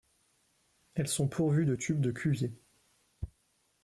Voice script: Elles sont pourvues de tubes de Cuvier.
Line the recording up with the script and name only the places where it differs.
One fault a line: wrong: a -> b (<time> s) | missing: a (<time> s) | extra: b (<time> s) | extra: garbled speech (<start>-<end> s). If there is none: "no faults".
no faults